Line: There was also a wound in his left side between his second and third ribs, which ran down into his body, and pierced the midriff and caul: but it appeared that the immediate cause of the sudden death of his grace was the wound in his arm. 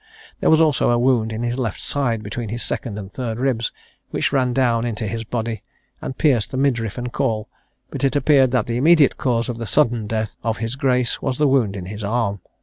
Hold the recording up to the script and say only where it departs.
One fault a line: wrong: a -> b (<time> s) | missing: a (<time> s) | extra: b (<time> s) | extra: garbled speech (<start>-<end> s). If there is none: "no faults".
no faults